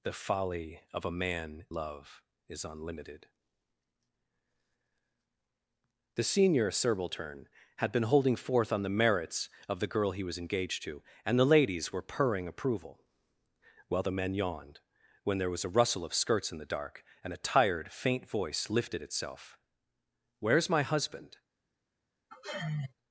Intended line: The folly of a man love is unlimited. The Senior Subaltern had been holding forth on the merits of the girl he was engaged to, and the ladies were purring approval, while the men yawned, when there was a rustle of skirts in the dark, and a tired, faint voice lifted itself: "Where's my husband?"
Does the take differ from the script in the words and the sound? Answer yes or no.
yes